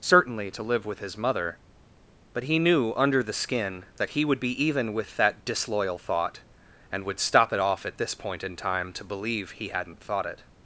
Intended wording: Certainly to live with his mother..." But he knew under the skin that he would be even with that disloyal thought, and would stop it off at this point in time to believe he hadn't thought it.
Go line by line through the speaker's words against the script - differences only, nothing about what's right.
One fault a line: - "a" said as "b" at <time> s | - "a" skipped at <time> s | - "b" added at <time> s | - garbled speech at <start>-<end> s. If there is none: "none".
none